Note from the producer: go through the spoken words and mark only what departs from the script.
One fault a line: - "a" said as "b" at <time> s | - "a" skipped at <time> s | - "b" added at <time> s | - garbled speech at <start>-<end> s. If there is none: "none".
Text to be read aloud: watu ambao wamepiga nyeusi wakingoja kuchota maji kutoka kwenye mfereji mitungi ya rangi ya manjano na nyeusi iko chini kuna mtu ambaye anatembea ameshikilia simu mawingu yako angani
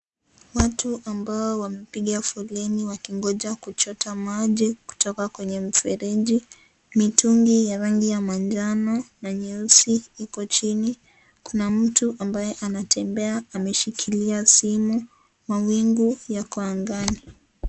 - "nyeusi" said as "foleni" at 2.2 s